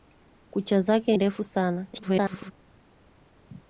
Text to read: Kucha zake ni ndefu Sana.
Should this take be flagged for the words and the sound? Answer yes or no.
yes